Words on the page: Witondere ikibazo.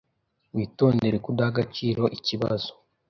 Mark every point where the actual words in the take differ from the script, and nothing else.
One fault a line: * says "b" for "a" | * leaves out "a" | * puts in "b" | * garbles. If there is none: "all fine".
* puts in "kudaha agaciro"